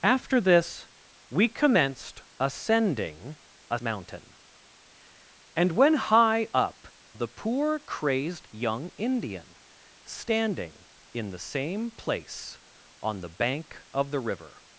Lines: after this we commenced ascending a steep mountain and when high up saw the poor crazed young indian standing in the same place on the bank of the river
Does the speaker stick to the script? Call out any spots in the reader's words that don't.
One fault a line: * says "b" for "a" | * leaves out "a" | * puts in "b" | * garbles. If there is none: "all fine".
* leaves out "steep"
* leaves out "saw"